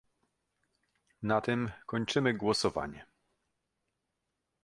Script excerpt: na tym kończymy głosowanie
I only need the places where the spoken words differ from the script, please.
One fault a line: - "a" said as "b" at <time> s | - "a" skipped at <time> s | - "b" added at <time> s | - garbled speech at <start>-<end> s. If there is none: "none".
none